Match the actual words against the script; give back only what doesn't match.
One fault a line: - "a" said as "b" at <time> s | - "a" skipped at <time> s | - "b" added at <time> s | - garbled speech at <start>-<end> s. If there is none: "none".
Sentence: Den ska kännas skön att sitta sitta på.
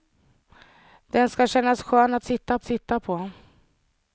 none